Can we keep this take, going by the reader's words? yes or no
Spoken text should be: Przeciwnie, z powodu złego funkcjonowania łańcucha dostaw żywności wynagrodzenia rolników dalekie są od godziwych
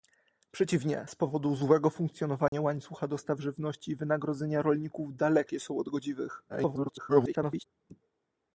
no